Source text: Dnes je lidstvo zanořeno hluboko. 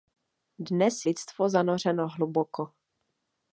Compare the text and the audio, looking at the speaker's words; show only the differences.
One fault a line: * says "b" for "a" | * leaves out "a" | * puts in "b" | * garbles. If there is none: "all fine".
* leaves out "je"